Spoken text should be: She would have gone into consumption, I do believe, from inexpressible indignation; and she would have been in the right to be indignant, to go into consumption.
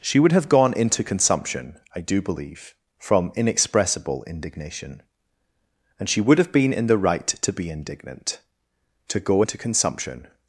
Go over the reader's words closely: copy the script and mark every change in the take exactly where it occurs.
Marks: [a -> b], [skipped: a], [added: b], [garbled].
She would have gone into consumption, I do believe, from inexpressible indignation; and she would have been in the right to be indignant, to go into consumption.